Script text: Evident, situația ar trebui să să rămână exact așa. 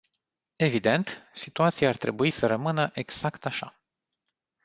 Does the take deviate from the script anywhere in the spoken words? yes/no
yes